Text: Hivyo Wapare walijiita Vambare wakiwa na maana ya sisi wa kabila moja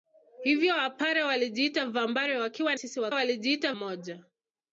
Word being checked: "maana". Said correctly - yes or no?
no